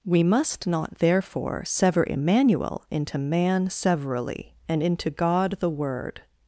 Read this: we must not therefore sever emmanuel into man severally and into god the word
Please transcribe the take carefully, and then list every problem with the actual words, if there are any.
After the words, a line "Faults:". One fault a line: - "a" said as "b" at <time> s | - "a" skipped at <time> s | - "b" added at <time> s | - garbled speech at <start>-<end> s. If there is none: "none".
we must not therefore sever emmanuel into man severally and into god the word
Faults:
none